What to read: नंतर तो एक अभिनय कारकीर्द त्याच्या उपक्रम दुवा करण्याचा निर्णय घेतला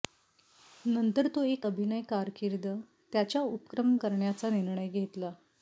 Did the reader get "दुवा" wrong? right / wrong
wrong